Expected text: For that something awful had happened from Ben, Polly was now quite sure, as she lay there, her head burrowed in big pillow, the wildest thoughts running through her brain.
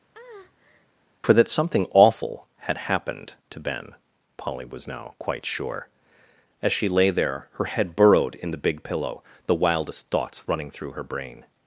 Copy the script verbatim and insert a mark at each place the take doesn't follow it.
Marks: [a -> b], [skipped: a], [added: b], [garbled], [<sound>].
[breath] For that something awful had happened [from -> to] Ben, Polly was now quite sure, as she lay there, her head burrowed in [added: the] big pillow, the wildest thoughts running through her brain.